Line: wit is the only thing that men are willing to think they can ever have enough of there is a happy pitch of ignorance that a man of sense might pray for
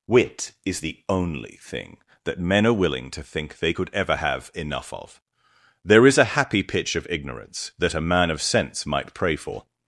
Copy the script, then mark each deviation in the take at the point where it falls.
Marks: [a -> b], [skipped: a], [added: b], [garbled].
wit is the only thing that men are willing to think they [can -> could] ever have enough of there is a happy pitch of ignorance that a man of sense might pray for